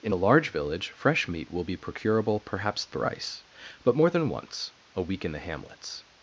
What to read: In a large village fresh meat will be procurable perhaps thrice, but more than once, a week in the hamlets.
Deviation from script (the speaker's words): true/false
false